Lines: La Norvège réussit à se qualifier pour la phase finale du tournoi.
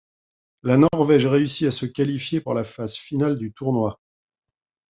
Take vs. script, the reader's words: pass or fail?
pass